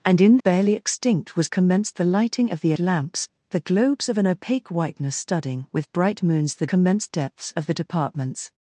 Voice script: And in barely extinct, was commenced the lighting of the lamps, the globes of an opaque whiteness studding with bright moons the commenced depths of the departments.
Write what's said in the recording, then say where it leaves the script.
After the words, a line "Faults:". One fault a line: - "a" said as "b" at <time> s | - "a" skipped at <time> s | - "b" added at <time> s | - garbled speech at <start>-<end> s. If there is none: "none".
And in barely extinct, was commenced the lighting of the lamps, the globes of an opaque whiteness studding with bright moons the commenced depths of the departments.
Faults:
none